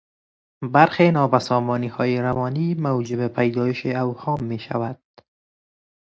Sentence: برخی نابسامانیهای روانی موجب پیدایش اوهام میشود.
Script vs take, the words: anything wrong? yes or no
no